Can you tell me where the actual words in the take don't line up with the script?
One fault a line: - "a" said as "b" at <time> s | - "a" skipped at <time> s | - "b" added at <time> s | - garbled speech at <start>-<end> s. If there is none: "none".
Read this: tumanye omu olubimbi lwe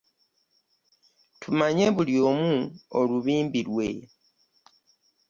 - "buli" added at 1.9 s